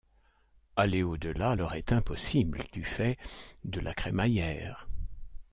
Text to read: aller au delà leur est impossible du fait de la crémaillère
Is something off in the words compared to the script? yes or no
no